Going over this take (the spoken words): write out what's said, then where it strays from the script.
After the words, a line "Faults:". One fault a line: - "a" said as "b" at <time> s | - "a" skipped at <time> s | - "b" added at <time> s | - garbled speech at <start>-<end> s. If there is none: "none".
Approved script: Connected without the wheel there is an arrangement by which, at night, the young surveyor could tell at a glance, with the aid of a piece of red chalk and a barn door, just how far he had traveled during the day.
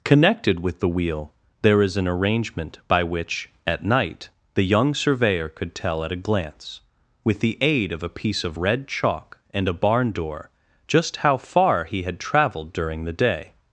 Connected with the wheel there is an arrangement by which, at night, the young surveyor could tell at a glance, with the aid of a piece of red chalk and a barn door, just how far he had traveled during the day.
Faults:
- "without" said as "with" at 0.6 s